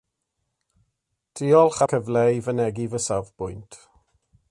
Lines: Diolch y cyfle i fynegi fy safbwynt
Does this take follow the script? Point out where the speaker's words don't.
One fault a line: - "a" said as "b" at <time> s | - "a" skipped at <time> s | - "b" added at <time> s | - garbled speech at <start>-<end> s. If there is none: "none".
none